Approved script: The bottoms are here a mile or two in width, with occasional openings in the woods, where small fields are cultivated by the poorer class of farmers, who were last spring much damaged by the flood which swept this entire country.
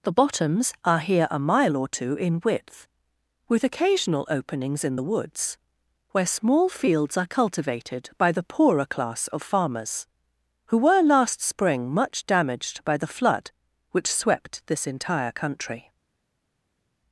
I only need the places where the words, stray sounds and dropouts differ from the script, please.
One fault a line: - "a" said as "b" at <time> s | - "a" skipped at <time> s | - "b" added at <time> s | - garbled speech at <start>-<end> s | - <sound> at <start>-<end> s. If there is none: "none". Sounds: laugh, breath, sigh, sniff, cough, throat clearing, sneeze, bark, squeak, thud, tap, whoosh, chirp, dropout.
none